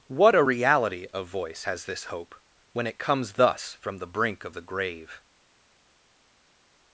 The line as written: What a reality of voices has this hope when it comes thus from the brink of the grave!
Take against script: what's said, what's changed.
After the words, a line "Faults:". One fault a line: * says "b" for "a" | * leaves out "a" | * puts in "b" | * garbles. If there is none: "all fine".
What a reality of voice has this hope when it comes thus from the brink of the grave!
Faults:
* says "voice" for "voices"